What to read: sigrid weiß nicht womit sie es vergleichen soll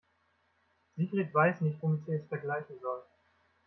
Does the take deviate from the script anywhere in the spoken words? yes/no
no